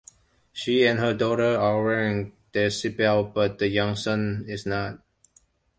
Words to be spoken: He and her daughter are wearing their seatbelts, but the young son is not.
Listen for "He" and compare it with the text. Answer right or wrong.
wrong